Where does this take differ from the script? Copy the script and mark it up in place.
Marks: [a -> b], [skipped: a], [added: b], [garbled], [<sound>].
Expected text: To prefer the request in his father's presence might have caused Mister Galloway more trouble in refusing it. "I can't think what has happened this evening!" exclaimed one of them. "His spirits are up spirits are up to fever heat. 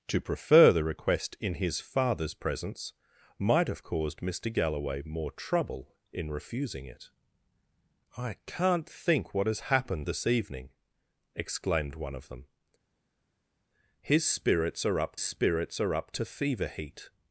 To prefer the request in his father's presence might have caused Mister Galloway more trouble in refusing it. "I can't think what has happened this evening!" exclaimed one of them. "His spirits are up spirits are up to fever heat.